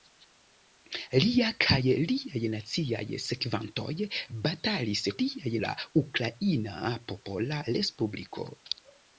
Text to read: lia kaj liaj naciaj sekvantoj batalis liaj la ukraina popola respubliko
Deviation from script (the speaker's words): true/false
false